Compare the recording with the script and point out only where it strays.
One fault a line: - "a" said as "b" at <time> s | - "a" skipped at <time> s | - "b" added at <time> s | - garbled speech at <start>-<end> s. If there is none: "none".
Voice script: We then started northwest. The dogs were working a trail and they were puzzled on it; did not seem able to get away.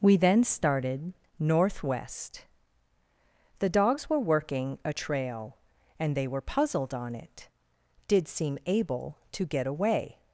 - "not" skipped at 8.3 s